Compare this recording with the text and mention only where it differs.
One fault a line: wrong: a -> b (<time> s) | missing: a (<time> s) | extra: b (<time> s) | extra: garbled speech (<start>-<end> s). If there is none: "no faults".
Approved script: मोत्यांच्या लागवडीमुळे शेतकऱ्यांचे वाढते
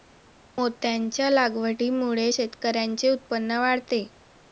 extra: उत्पन्न (3.1 s)